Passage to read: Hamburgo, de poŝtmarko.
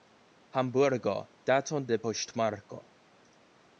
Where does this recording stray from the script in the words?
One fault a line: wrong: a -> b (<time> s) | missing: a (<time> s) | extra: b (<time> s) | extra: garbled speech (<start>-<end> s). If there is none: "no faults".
extra: daton (1.5 s)